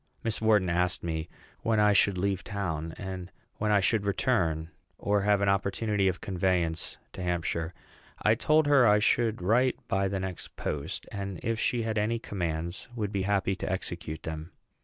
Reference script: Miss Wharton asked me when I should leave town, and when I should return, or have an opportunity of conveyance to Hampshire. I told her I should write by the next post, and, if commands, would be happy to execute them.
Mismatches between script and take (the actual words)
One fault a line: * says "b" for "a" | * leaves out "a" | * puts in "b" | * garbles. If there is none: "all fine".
* puts in "she had any"